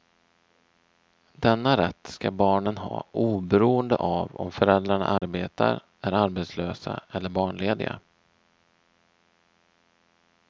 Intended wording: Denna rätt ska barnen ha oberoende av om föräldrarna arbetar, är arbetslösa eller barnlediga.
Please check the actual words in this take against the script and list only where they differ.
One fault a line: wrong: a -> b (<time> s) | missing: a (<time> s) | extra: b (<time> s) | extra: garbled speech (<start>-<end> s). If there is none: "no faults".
no faults